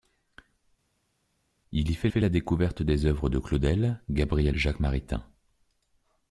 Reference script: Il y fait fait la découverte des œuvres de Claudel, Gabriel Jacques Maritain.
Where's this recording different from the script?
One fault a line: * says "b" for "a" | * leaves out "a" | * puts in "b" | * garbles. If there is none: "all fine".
all fine